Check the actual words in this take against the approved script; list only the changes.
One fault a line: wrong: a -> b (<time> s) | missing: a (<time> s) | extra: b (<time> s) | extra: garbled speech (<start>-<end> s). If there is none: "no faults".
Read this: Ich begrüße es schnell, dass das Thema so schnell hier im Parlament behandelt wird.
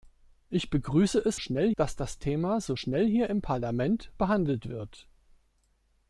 no faults